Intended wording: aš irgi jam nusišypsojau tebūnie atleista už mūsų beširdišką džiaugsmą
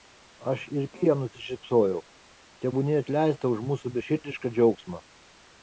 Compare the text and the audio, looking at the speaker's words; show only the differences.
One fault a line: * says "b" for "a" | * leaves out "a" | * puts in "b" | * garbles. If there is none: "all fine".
all fine